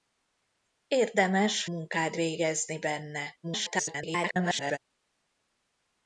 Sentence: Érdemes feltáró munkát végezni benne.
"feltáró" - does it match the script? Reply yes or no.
no